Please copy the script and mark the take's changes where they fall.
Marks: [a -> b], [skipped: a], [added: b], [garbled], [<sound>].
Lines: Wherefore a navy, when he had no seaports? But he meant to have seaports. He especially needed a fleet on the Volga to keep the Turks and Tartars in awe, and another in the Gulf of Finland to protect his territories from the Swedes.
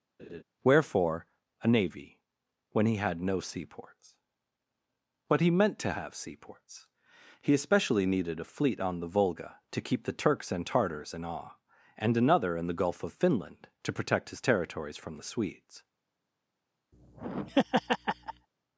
[laugh] Wherefore a navy, when he had no seaports? But he meant to have seaports. He especially needed a fleet on the Volga to keep the Turks and Tartars in awe, and another in the Gulf of Finland to protect his territories from the Swedes. [laugh]